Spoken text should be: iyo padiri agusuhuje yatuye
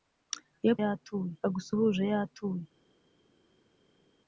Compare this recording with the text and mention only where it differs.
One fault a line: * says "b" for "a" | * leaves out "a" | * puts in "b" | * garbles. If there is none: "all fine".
* says "yatuye" for "padiri"